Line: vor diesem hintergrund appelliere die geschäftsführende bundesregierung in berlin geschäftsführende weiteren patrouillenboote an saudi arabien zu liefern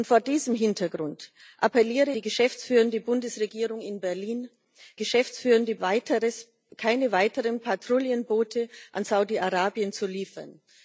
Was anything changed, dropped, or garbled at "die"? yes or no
no